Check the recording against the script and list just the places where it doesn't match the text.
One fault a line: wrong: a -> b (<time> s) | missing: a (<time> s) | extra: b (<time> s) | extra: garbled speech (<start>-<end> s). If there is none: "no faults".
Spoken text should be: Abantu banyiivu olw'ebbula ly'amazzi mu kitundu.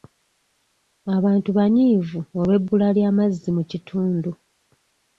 no faults